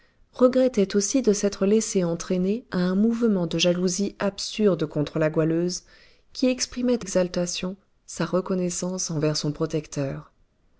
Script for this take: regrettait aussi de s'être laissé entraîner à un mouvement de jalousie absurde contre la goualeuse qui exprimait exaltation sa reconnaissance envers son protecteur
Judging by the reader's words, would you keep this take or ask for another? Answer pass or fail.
pass